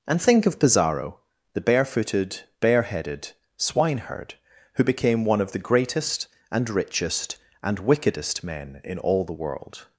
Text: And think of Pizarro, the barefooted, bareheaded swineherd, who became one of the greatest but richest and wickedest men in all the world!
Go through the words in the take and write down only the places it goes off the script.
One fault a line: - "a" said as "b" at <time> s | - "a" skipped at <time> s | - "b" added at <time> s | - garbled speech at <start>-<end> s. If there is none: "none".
- "but" said as "and" at 6.5 s